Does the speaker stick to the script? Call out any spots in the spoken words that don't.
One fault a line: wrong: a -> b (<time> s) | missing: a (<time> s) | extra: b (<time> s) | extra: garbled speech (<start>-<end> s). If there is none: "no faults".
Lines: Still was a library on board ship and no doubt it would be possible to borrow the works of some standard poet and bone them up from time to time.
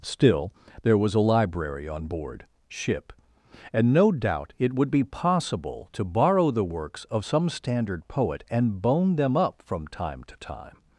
extra: there (0.8 s)